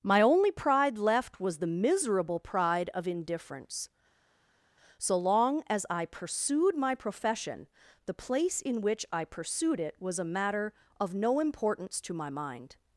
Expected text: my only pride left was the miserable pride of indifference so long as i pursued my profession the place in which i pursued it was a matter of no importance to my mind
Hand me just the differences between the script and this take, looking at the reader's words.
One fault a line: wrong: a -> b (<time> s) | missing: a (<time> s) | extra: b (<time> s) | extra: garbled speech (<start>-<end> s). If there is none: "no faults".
no faults